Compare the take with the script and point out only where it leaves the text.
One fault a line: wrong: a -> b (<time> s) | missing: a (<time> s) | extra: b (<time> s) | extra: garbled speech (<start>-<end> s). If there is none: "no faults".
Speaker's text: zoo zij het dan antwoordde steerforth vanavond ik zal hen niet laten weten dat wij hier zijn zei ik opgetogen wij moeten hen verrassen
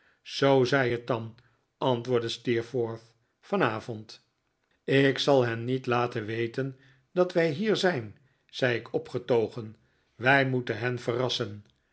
no faults